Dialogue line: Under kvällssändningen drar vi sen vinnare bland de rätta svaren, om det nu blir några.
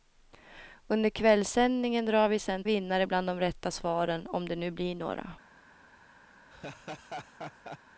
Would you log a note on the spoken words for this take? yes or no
no